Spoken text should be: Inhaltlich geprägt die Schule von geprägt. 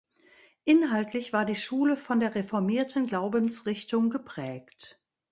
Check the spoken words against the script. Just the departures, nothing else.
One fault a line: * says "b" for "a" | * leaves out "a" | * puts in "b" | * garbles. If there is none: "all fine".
* says "war" for "geprägt"
* puts in "der reformierten Glaubensrichtung"